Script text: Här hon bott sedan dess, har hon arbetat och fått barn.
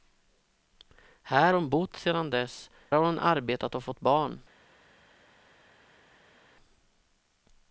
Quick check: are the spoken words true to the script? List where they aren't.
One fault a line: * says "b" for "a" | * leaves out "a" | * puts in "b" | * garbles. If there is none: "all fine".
all fine